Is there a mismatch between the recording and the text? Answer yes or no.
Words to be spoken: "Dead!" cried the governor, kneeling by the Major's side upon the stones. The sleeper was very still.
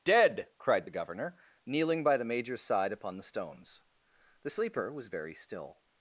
no